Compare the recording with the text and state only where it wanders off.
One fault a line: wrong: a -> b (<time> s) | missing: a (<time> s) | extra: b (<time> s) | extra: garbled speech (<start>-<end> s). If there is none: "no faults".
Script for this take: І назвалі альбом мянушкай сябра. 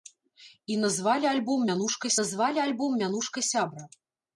extra: назвалі альбом мянушкай (2.2 s)